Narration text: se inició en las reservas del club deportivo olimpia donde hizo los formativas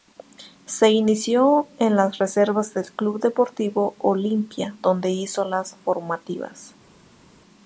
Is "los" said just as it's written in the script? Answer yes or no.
no